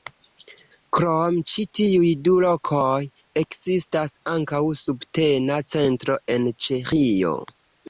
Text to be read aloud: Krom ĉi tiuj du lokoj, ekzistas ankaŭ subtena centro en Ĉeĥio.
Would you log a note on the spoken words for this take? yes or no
no